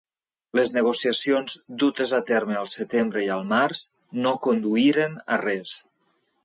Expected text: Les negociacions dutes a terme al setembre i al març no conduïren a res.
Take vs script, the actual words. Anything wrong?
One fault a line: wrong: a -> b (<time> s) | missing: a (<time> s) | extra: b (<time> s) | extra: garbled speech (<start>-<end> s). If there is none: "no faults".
no faults